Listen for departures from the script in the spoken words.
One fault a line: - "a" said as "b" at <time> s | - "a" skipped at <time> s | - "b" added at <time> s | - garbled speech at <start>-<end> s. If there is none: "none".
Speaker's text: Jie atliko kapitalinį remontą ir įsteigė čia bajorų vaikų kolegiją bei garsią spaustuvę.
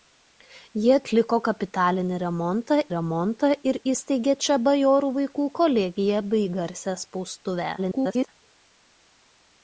- "remontą" added at 2.9 s
- garbled speech at 7.8-8.3 s